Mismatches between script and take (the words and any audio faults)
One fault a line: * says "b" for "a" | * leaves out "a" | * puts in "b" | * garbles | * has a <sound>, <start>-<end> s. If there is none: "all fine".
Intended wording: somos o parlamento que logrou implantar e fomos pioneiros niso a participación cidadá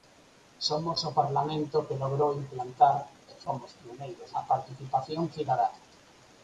* leaves out "niso"